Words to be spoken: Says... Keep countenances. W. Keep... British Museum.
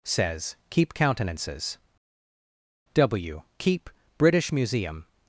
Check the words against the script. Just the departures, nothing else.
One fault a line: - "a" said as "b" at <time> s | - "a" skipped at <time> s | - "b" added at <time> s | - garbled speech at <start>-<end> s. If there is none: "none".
none